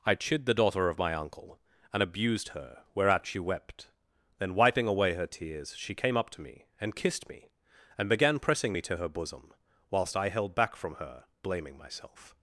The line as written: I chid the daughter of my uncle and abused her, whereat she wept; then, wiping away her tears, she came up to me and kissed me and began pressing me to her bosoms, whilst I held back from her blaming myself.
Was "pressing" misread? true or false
false